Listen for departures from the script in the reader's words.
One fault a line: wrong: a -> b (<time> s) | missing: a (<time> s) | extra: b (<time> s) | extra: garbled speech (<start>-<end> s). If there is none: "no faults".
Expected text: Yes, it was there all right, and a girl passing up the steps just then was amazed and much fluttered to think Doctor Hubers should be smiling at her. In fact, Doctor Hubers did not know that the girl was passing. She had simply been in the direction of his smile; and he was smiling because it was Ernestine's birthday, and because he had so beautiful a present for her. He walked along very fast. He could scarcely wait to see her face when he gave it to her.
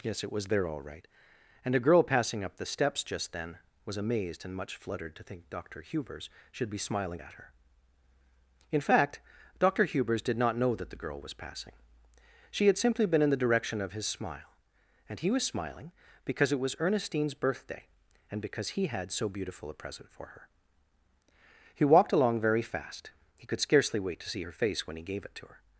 no faults